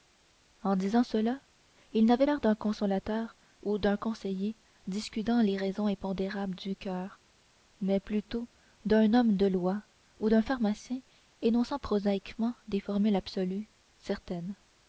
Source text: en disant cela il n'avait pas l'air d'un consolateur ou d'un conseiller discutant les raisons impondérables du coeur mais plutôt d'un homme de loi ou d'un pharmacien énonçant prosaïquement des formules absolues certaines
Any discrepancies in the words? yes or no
yes